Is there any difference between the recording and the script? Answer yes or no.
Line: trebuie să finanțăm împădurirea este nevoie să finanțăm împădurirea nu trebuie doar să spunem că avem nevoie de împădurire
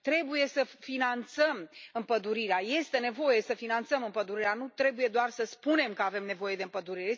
no